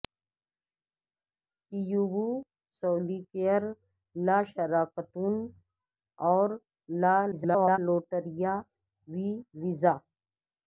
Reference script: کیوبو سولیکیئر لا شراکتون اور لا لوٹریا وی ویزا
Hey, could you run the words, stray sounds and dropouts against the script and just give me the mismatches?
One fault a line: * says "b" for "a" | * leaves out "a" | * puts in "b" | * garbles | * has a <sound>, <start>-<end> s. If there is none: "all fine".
* garbles